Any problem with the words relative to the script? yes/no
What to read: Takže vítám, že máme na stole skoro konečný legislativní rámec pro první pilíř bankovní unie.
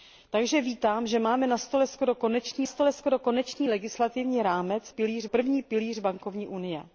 yes